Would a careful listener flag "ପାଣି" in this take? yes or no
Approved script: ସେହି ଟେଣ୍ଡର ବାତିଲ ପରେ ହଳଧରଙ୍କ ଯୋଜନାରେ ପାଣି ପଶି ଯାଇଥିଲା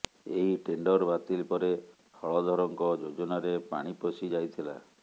no